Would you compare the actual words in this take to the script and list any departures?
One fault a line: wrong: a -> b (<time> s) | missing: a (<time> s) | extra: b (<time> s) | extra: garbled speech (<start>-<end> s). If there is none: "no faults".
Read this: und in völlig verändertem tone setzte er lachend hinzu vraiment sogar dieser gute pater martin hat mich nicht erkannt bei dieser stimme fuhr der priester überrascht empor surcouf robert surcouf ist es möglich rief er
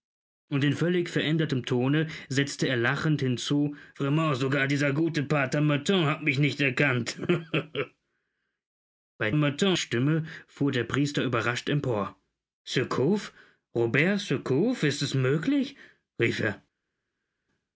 wrong: dieser -> martin (9.3 s)